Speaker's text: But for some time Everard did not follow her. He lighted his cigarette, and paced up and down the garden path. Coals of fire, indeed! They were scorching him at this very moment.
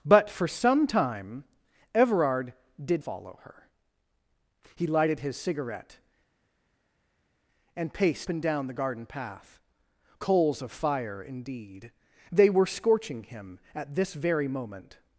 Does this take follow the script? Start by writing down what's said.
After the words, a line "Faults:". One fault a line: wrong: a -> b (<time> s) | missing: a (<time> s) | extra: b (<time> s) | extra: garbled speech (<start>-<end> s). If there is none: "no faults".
But for some time Everard did follow her. He lighted his cigarette, and paced and down the garden path. Coals of fire, indeed! They were scorching him at this very moment.
Faults:
missing: not (3.0 s)
missing: up (8.3 s)